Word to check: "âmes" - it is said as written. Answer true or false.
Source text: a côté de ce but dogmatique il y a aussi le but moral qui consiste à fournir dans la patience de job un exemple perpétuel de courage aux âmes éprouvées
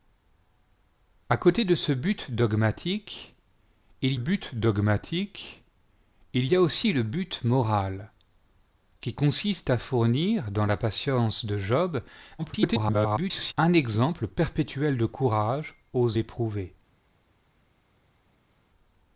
false